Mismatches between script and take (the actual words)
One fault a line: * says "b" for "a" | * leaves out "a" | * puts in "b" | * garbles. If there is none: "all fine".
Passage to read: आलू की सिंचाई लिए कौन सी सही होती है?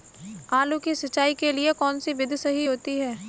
* puts in "के"
* puts in "विधि"